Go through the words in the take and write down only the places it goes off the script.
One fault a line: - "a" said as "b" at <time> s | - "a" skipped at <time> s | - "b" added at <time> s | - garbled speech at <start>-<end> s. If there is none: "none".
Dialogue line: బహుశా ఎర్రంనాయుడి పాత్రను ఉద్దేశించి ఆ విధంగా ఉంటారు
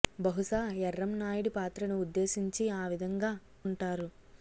none